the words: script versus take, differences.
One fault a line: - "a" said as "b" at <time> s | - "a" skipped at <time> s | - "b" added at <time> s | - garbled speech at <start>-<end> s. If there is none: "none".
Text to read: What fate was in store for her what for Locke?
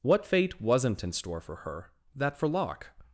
- "was" said as "wasn't" at 0.6 s
- "what" said as "that" at 2.2 s